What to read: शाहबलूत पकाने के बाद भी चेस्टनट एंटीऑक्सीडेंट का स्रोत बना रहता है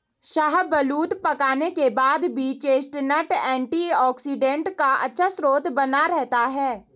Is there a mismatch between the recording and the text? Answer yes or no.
yes